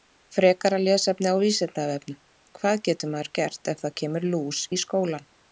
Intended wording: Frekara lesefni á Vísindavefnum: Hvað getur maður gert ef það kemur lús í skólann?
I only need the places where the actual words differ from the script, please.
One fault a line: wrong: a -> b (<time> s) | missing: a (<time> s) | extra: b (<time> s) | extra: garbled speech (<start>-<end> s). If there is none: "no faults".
no faults